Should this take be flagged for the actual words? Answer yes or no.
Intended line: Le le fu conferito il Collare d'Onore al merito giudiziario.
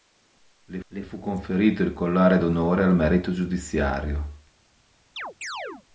no